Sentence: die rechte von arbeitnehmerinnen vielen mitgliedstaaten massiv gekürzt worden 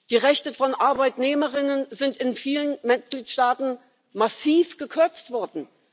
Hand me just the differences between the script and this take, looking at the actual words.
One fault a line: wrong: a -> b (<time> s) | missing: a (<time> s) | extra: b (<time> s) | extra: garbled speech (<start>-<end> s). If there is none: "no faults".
extra: sind in (1.9 s)